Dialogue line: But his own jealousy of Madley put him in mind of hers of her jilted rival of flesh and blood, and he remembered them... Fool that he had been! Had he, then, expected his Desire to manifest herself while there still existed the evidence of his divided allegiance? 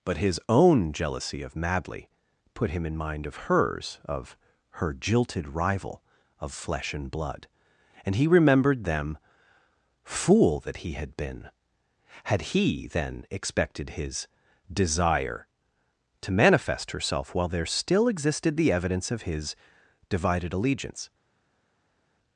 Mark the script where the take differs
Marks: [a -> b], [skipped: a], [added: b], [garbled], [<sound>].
But his own jealousy of Madley put him in mind of hers of her jilted rival of flesh and blood, and he remembered them... Fool that he had been! Had he, then, expected his Desire to manifest herself while there still existed the evidence of his divided allegiance?